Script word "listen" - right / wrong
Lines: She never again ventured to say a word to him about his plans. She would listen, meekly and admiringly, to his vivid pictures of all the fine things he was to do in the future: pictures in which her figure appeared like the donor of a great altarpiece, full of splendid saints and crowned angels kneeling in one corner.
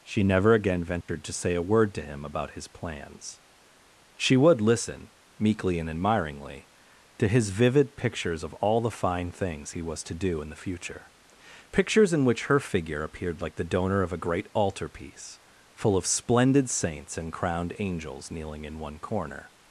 right